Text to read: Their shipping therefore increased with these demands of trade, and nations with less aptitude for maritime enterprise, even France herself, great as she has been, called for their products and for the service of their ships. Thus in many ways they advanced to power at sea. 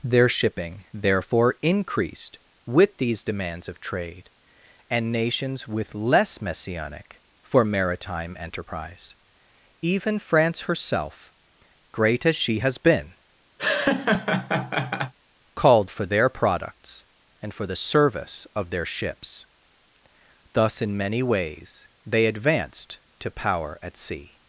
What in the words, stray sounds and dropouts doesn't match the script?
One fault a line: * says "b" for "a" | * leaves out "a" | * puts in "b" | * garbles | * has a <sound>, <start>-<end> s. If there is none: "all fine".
* says "messianic" for "aptitude"
* has a laugh, 13.6-15.1 s